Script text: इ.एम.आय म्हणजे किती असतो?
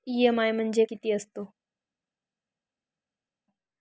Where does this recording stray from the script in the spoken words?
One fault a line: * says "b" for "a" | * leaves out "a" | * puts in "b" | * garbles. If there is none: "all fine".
all fine